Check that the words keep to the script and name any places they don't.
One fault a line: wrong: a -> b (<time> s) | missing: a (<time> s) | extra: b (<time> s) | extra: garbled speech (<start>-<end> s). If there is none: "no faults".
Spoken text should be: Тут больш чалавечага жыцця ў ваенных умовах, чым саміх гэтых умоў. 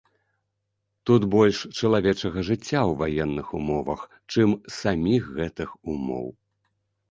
no faults